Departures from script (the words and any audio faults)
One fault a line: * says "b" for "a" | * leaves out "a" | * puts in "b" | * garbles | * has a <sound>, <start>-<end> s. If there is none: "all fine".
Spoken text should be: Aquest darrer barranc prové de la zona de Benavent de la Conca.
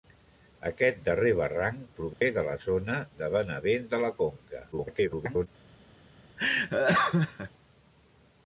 * has a dropout, 2.1-2.2 s
* garbles
* has a laugh, 6.4-7.5 s